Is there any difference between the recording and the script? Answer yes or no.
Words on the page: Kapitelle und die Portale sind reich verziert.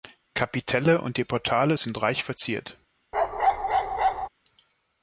no